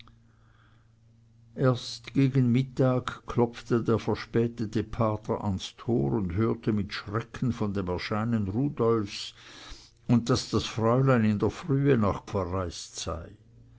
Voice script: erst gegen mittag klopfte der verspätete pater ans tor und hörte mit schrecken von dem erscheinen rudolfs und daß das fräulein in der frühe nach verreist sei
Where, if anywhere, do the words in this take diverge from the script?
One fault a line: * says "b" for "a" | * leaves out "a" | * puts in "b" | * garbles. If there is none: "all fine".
all fine